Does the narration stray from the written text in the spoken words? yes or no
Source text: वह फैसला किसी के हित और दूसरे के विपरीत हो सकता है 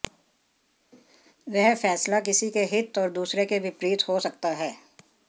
no